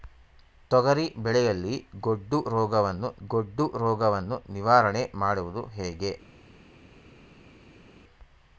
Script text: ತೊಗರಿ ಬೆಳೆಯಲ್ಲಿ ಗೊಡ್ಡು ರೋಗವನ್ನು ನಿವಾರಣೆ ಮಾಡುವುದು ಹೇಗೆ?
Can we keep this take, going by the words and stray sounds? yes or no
no